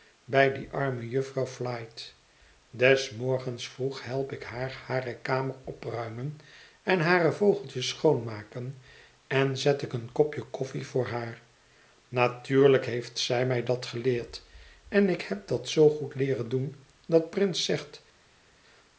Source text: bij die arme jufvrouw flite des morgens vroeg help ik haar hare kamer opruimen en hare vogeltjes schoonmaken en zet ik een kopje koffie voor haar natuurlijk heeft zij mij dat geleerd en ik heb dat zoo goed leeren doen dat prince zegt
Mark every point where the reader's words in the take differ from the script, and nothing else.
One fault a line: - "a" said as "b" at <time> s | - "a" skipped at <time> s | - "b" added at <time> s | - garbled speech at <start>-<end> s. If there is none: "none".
none